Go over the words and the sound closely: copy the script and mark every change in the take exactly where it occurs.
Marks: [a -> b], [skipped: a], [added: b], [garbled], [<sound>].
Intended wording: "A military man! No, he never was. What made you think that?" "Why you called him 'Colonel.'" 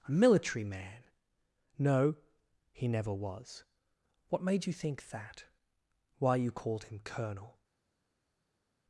"A military man! No, he never was. What made you think that?" "Why you called him 'Colonel.'"